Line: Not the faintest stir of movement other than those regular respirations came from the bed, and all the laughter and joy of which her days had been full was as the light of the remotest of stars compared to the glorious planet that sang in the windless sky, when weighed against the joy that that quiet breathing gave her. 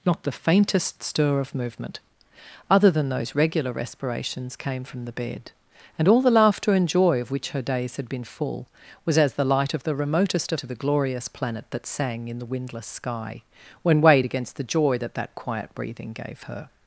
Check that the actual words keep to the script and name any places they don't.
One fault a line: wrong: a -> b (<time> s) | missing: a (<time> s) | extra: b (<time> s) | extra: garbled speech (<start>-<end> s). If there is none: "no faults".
missing: stars compared (10.6 s)